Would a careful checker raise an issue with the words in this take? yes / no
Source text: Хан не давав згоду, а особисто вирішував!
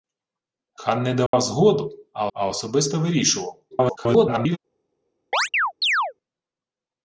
yes